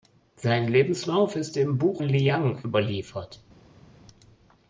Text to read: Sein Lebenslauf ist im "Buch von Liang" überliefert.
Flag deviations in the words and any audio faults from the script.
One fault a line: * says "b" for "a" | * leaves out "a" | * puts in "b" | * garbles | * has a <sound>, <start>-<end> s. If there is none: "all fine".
* leaves out "von"